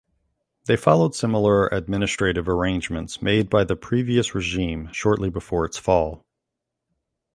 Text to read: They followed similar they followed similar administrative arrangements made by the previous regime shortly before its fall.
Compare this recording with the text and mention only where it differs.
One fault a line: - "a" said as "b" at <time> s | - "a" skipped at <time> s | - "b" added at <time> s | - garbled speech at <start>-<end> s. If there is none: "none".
- "they followed similar" skipped at 1.7 s